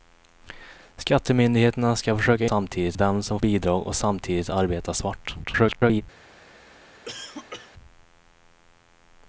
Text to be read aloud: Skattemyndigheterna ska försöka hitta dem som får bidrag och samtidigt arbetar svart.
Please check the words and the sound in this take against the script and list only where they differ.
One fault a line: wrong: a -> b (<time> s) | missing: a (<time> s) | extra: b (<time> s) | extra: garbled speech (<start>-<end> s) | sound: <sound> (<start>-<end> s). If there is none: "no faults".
wrong: hitta -> samtidigt (2.4 s)
missing: får (3.4 s)
extra: garbled speech (5.4-6.0 s)
sound: cough (7.1-7.7 s)